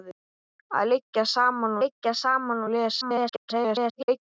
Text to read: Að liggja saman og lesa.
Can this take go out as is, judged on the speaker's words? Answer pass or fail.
fail